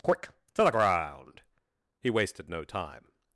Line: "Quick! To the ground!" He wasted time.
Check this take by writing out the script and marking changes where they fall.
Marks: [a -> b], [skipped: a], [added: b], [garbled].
"Quick! To the ground!" He wasted [added: no] time.